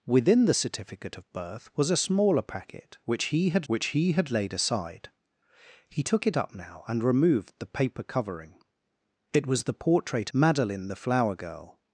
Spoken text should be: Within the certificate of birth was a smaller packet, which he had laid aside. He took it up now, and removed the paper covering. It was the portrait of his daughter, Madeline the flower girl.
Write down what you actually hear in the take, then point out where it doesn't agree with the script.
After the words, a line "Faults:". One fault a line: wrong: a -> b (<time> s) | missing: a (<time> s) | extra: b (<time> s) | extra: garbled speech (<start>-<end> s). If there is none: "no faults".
Within the certificate of birth was a smaller packet, which he had which he had laid aside. He took it up now, and removed the paper covering. It was the portrait Madeline the flower girl.
Faults:
extra: which he had (3.7 s)
missing: of his daughter (10.3 s)